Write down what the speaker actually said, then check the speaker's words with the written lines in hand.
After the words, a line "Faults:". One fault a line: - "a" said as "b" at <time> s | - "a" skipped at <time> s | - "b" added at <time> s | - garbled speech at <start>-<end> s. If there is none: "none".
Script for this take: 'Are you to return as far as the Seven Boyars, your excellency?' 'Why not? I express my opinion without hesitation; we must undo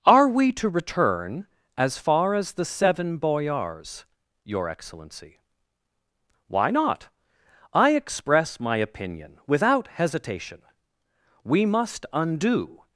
'Are we to return as far as the Seven Boyars, your excellency?' 'Why not? I express my opinion without hesitation; we must undo
Faults:
- "you" said as "we" at 0.3 s